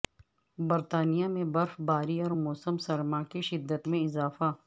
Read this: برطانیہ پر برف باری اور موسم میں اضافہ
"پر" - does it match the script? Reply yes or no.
no